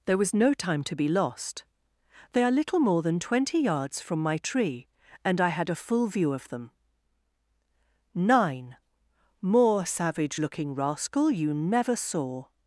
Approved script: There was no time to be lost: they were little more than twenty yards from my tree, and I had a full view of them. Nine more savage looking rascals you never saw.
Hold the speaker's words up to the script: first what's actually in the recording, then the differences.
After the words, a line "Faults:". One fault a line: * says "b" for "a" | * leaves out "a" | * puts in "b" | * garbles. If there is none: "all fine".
There was no time to be lost: they are little more than twenty yards from my tree, and I had a full view of them. Nine more savage looking rascal you never saw.
Faults:
* says "are" for "were"
* says "rascal" for "rascals"